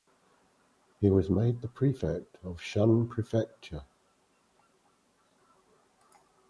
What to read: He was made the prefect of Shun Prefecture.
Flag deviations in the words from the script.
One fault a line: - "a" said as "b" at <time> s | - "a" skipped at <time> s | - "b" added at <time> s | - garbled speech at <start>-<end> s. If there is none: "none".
none